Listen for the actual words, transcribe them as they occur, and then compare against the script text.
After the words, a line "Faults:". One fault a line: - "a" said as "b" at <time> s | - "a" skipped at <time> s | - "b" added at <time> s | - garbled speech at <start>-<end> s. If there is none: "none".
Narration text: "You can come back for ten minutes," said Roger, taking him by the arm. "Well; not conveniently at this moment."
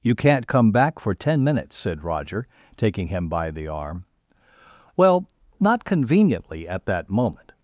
"You can't come back for ten minutes," said Roger, taking him by the arm. "Well; not conveniently at that moment."
Faults:
- "can" said as "can't" at 0.1 s
- "this" said as "that" at 6.9 s